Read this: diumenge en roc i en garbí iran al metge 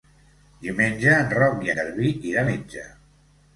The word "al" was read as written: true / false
false